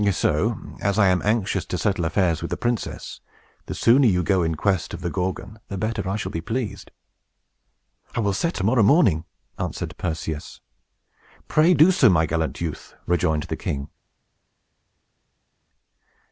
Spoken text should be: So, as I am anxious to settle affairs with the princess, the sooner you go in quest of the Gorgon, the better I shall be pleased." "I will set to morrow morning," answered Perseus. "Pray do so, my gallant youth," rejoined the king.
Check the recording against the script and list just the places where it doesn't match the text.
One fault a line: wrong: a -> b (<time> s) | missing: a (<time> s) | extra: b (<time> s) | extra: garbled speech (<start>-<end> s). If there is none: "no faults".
no faults